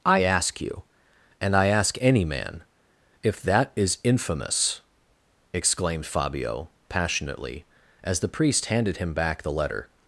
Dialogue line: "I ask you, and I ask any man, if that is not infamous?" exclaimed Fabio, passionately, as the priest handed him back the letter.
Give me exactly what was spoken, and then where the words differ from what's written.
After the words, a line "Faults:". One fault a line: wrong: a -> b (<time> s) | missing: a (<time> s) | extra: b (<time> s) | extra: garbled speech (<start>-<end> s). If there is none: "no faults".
"I ask you, and I ask any man, if that is infamous?" exclaimed Fabio, passionately, as the priest handed him back the letter.
Faults:
missing: not (4.0 s)